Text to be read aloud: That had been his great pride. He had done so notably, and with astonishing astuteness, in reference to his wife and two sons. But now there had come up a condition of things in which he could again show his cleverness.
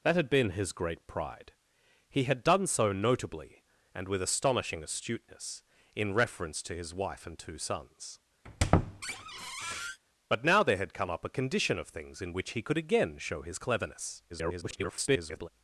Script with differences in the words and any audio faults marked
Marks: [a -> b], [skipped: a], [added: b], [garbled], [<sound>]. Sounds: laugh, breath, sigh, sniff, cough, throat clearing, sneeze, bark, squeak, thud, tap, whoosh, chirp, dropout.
That had been his great pride. He had done so notably, and with astonishing astuteness, in reference to his wife and two sons. [squeak] But now there had come up a condition of things in which he could again show his cleverness. [garbled]